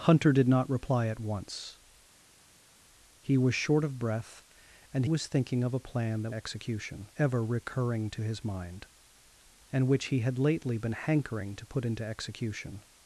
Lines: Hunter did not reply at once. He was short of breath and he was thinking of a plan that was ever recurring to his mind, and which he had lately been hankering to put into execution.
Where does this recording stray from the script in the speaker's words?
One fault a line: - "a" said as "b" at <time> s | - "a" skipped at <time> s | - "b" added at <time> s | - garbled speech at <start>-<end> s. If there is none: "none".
- "he" skipped at 5.0 s
- "was" said as "execution" at 6.3 s